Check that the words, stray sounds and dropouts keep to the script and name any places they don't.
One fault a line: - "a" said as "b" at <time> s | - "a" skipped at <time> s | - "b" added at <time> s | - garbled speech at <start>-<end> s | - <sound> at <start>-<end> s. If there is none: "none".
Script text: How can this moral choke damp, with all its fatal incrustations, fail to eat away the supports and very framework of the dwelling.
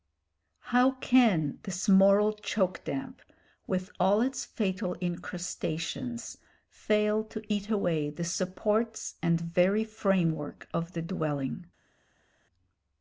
none